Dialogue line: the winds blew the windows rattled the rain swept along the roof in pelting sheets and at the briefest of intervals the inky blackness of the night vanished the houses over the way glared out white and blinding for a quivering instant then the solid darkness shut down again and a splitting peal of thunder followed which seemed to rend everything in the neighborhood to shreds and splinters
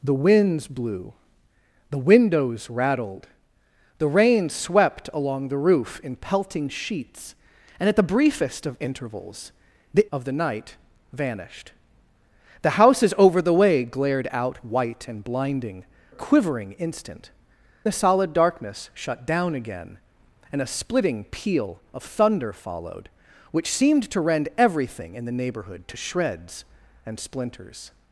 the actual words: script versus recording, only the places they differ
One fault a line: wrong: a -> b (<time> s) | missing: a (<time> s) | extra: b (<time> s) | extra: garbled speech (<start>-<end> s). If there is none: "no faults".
missing: inky blackness (10.1 s)
missing: for (15.8 s)
missing: then (17.3 s)